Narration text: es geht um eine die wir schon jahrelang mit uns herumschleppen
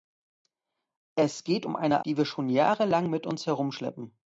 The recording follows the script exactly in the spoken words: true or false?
true